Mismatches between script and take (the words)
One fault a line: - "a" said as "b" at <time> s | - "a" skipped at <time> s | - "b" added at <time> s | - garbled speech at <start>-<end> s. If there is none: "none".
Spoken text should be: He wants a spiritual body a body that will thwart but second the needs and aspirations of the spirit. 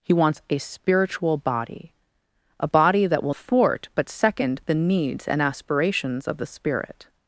none